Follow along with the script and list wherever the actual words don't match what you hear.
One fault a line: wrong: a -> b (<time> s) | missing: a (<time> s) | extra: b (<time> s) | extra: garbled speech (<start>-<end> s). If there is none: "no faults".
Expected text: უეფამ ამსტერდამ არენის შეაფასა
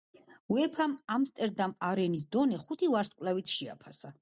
extra: დონე ხუთი ვარსკვლავით (2.4 s)